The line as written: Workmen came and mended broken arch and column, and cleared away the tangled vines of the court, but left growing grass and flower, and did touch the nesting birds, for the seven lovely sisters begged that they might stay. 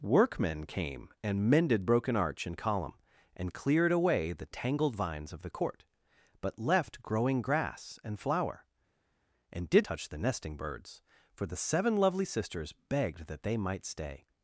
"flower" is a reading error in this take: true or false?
false